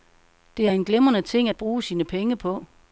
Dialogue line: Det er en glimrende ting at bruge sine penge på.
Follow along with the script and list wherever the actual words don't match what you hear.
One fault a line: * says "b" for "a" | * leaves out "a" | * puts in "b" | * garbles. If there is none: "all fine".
all fine